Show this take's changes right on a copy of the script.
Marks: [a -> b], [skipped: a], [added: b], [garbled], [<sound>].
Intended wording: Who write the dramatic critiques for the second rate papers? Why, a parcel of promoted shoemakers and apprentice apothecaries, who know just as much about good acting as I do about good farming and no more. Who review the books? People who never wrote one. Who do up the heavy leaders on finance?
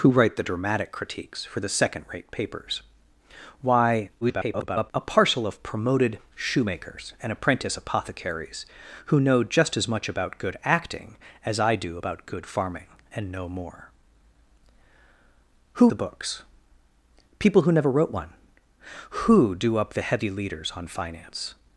Who write the dramatic critiques for the second rate papers? Why, [garbled] a parcel of promoted shoemakers and apprentice apothecaries, who know just as much about good acting as I do about good farming and no more. Who [skipped: review] the books? People who never wrote one. Who do up the heavy leaders on finance?